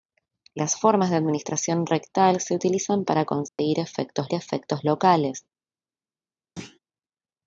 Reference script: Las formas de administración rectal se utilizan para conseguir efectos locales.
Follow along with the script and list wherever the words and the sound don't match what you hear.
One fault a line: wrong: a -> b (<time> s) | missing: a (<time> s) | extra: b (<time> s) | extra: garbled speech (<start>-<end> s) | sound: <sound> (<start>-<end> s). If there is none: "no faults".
sound: dropout (3.5-3.6 s)
extra: efectos (4.3 s)
sound: thud (6.6-6.8 s)